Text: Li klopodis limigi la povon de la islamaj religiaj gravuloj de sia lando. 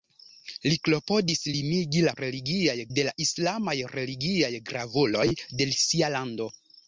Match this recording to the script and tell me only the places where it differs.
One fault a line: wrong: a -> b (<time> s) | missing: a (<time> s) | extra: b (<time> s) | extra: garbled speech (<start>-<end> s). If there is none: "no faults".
wrong: povon -> religiaj (2.2 s)